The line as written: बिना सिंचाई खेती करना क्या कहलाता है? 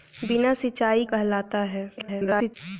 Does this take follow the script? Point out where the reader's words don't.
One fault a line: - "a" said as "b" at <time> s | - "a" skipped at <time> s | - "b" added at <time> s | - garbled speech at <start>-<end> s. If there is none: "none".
- "खेती करना क्या" skipped at 1.1 s
- garbled speech at 2.0-2.6 s